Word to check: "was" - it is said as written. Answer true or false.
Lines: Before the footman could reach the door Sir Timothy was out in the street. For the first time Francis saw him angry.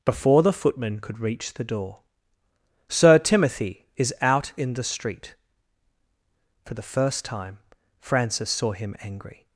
false